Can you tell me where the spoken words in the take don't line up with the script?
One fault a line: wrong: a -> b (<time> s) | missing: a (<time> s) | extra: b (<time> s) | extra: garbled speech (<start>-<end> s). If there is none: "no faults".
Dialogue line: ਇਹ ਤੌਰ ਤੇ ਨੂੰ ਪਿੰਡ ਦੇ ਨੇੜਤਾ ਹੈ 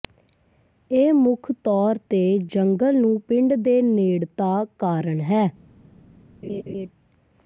extra: ਮੁੱਖ (1.1 s)
extra: ਜੰਗਲ (2.5 s)
extra: ਕਾਰਨ (4.8 s)